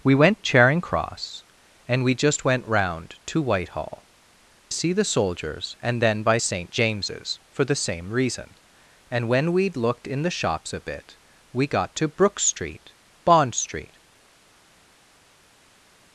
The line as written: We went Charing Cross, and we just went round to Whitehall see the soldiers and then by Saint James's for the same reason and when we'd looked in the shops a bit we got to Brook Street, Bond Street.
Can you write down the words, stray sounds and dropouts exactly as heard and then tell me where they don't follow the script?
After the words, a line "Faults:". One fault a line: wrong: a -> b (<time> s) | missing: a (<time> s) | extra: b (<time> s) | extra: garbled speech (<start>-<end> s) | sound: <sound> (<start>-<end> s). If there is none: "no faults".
We went Charing Cross, and we just went round to Whitehall see the soldiers and then by Saint James's for the same reason and when we'd looked in the shops a bit we got to Brook Street, Bond Street.
Faults:
no faults